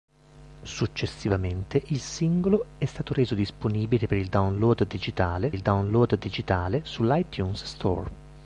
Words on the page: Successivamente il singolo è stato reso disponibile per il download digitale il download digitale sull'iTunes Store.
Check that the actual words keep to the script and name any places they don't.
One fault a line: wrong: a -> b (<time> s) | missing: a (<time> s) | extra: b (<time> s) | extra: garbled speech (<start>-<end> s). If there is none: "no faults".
no faults